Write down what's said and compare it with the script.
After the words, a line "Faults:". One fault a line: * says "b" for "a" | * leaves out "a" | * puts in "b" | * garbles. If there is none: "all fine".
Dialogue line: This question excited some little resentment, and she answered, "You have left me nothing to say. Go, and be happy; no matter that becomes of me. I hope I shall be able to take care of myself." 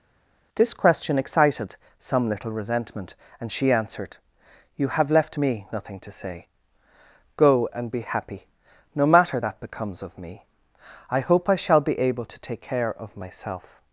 This question excited some little resentment, and she answered, "You have left me nothing to say. Go, and be happy; no matter that becomes of me. I hope I shall be able to take care of myself."
Faults:
all fine